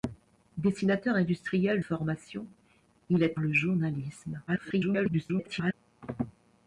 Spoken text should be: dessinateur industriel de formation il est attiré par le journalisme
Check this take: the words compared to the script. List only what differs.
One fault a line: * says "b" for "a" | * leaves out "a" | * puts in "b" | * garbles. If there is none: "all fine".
* leaves out "de"
* leaves out "attiré par"
* garbles